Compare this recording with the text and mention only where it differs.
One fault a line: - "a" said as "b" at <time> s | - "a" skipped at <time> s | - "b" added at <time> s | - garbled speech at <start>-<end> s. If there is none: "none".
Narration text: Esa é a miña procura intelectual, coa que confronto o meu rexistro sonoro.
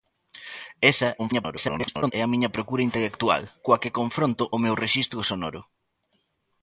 - garbled speech at 1.2-2.1 s